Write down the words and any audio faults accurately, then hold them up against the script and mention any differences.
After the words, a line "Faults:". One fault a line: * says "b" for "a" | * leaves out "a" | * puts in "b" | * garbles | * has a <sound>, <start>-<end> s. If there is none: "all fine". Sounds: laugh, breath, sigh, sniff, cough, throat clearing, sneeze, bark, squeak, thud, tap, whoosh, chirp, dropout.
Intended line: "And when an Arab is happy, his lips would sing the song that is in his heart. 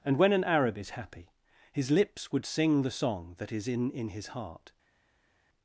"And when an Arab is happy, his lips would sing the song that is in in his heart.
Faults:
* puts in "in"